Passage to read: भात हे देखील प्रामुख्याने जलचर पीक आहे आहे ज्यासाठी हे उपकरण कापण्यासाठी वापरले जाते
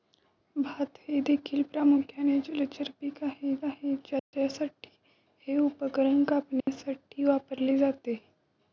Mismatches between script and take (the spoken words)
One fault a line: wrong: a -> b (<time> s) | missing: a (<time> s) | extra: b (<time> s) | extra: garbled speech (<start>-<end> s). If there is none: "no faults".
no faults